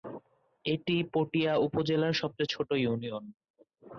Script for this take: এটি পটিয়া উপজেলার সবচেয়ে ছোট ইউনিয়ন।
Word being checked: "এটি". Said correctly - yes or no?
yes